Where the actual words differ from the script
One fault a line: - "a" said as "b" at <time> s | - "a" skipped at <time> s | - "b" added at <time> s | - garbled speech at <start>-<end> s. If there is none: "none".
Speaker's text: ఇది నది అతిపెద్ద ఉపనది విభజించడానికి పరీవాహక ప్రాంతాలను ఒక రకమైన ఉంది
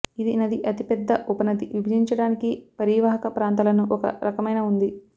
none